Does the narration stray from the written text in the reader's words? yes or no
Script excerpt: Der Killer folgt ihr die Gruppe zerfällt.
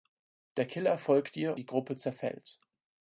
no